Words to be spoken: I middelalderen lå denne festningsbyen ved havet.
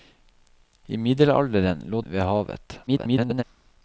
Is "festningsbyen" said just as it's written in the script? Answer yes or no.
no